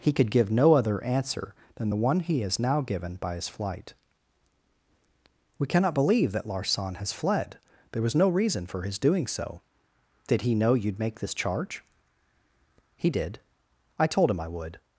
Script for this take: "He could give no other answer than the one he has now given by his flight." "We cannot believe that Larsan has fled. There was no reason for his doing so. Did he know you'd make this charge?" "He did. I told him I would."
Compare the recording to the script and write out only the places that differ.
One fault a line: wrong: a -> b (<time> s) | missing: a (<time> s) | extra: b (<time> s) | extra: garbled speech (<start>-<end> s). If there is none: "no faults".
no faults